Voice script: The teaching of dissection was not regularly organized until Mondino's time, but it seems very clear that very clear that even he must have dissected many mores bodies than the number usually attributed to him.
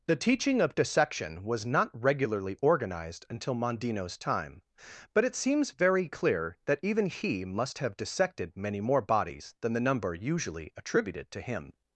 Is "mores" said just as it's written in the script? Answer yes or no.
no